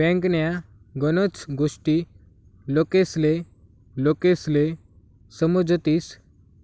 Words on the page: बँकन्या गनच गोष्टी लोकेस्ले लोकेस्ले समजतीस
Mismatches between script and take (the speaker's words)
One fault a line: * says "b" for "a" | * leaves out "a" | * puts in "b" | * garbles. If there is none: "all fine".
all fine